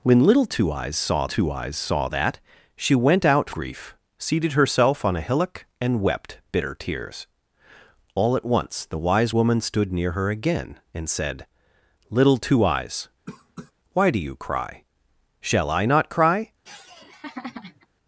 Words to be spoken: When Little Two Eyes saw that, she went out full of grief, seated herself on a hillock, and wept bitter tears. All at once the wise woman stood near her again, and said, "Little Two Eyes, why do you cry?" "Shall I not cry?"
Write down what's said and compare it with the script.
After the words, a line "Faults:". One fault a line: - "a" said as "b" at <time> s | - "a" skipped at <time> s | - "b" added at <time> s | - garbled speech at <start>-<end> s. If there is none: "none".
When Little Two Eyes saw Two Eyes saw that, she went out grief, seated herself on a hillock, and wept bitter tears. All at once the wise woman stood near her again, and said, "Little Two Eyes, why do you cry?" "Shall I not cry?"
Faults:
- "Two Eyes saw" added at 1.3 s
- "full of" skipped at 3.5 s